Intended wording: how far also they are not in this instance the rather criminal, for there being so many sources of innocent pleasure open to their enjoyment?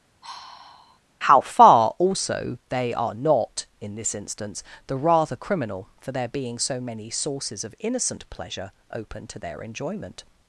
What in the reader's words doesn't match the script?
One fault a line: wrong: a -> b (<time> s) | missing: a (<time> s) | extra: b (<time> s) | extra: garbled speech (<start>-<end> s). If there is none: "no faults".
no faults